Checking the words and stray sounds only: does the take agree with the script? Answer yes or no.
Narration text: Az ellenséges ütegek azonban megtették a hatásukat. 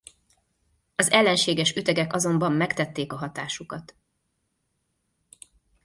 yes